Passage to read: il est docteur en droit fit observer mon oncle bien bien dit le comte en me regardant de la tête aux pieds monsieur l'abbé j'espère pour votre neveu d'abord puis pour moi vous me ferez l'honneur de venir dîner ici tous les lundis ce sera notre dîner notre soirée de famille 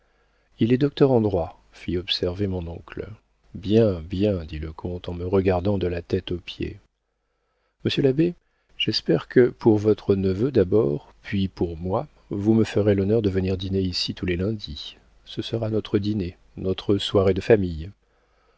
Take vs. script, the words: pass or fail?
fail